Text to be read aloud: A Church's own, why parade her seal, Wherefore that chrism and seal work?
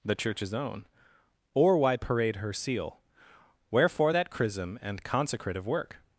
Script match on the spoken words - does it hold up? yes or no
no